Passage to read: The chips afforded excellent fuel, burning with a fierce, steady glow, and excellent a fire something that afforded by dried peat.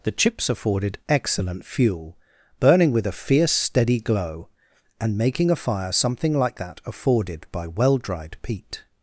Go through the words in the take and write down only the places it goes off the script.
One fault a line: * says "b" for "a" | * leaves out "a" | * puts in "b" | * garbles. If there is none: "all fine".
* says "making" for "excellent"
* puts in "like"
* puts in "well"